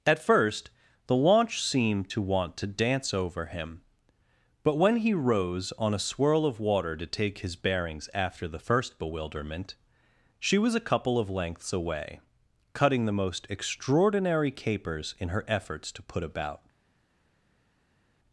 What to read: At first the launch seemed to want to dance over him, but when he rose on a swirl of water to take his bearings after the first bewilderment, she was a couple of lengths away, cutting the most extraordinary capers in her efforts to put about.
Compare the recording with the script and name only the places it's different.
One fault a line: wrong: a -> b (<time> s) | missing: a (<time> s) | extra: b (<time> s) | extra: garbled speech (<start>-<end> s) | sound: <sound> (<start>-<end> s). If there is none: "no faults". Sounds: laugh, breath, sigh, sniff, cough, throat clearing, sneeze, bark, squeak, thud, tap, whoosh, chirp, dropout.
no faults